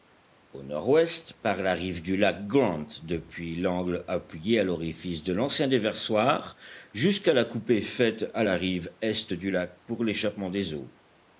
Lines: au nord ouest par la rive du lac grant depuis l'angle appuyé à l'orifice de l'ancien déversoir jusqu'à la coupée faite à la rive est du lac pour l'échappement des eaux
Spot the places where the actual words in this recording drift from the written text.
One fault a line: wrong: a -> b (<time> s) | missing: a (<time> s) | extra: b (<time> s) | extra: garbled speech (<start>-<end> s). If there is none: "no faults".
no faults